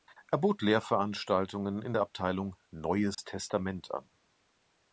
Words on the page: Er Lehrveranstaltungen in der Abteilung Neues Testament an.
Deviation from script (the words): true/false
true